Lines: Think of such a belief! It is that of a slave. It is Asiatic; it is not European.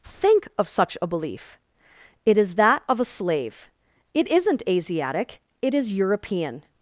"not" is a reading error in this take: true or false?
true